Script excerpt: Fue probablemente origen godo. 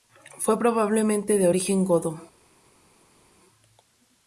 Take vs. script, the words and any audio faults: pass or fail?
fail